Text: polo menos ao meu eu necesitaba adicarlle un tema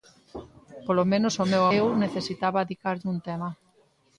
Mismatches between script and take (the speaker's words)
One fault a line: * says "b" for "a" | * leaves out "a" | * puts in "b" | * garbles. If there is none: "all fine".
all fine